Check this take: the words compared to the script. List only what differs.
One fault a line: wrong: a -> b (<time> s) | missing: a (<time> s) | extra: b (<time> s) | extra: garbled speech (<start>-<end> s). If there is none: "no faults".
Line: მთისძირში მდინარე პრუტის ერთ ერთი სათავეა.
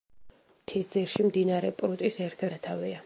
missing: ერთი (2.5 s)